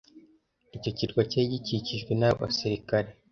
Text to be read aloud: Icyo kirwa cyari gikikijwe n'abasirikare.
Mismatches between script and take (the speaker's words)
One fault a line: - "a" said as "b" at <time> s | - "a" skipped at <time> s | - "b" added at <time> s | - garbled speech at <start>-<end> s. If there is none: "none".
none